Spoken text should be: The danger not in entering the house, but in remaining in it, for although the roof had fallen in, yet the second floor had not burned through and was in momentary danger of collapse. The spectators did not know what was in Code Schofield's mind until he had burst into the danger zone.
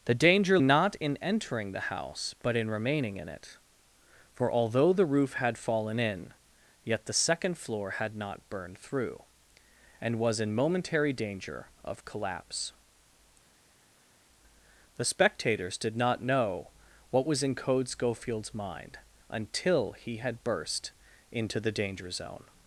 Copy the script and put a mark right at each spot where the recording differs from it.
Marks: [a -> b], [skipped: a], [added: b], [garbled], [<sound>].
The danger not in entering the house, but in remaining in it, for although the roof had fallen in, yet the second floor had not burned through and was in momentary danger of collapse. The spectators did not know what was in Code Schofield's mind until he had burst into the danger zone.